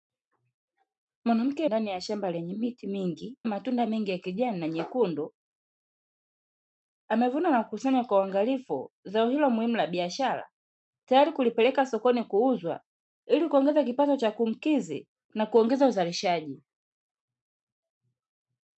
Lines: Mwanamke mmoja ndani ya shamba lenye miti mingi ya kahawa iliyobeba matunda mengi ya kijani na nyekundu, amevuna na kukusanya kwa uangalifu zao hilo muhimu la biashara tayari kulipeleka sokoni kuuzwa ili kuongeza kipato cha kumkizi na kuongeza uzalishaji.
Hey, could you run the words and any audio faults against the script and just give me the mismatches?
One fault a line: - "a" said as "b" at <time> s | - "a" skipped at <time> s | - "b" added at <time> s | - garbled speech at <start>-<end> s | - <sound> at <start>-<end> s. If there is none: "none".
- "mmoja" skipped at 1.7 s
- "ya kahawa iliyobeba" skipped at 3.4 s